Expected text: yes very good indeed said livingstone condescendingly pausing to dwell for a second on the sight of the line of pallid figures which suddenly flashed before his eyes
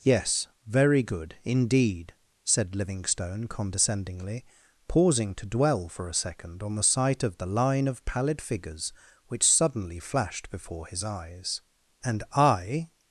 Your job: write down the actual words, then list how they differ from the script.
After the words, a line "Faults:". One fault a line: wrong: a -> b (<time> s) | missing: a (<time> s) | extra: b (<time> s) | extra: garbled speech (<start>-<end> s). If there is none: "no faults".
yes very good indeed said livingstone condescendingly pausing to dwell for a second on the sight of the line of pallid figures which suddenly flashed before his eyes and i
Faults:
extra: and i (12.0 s)